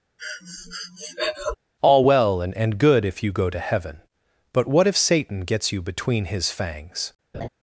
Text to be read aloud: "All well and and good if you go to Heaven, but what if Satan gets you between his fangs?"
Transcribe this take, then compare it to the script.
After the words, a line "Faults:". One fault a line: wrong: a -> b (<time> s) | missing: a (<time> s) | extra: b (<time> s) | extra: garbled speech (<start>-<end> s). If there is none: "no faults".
"All well and and good if you go to Heaven, but what if Satan gets you between his fangs?"
Faults:
no faults